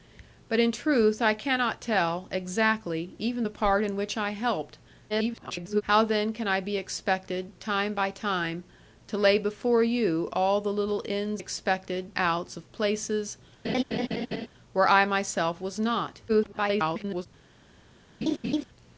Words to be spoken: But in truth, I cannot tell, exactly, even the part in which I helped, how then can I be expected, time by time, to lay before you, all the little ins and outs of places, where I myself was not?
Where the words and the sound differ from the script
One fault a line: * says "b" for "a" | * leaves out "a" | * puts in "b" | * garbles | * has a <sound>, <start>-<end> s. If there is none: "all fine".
* garbles
* says "expected" for "and"
* has a laugh, 13.6-14.5 s
* garbles
* has a laugh, 18.2-18.6 s